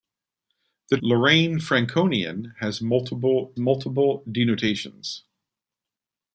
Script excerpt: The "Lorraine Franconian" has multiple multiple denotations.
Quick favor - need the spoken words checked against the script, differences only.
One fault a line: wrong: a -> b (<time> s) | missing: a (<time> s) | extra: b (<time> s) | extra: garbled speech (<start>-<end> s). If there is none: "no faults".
no faults